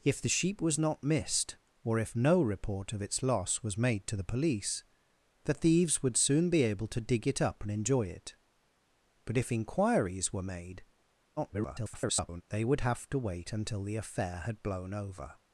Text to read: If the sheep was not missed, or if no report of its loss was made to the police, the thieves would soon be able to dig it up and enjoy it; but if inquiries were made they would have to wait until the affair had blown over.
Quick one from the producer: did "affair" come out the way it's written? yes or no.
yes